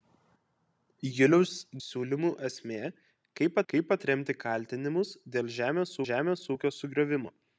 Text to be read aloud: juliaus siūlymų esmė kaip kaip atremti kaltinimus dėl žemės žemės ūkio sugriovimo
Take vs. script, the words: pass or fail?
pass